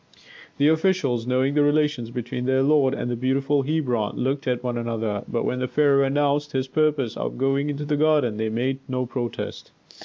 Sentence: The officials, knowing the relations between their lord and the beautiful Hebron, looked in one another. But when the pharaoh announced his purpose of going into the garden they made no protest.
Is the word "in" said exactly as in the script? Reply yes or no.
no